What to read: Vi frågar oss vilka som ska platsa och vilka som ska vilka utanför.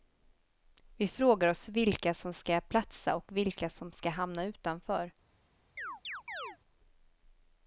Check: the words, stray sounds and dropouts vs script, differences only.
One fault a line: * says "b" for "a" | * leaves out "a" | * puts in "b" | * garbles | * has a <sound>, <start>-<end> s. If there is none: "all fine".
* says "hamna" for "vilka"
* has a chirp, 5.8-6.6 s